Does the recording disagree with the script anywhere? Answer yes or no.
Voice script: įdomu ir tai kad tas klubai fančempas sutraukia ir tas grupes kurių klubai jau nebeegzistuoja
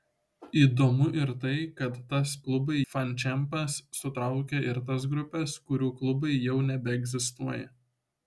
no